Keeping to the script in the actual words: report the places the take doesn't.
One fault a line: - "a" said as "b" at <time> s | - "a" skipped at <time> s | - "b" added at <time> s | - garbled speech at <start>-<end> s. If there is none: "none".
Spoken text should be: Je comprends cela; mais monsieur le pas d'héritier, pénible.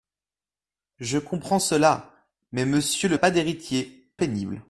none